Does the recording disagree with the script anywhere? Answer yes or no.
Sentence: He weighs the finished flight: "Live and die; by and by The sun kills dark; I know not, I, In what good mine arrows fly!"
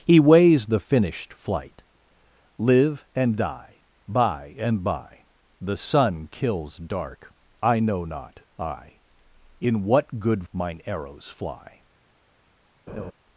no